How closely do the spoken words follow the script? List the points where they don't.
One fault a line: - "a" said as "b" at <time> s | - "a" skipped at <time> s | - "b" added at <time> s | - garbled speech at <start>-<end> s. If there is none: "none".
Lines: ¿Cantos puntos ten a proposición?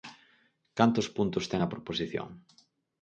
none